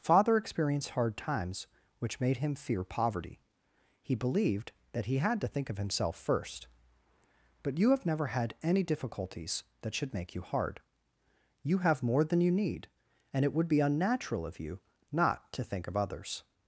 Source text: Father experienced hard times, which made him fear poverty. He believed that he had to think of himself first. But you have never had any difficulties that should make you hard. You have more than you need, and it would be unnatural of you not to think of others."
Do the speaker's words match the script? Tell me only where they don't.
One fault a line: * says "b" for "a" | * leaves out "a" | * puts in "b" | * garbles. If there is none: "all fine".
all fine